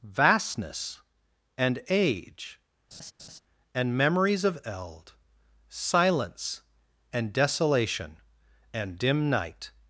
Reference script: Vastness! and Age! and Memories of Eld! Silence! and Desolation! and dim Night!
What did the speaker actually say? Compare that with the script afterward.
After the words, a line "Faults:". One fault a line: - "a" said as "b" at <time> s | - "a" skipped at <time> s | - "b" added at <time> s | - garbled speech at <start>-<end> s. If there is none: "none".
Vastness! and Age! and Memories of Eld! Silence! and Desolation! and dim Night!
Faults:
none